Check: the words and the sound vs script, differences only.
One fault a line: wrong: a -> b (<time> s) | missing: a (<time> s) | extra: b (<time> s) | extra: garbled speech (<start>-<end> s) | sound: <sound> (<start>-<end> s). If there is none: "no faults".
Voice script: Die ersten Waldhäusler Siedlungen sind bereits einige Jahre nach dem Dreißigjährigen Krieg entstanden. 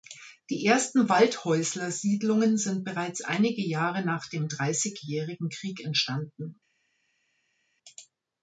no faults